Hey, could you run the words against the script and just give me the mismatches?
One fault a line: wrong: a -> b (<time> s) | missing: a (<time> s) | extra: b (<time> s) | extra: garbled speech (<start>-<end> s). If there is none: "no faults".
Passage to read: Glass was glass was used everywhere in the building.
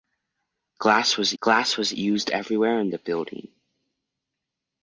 no faults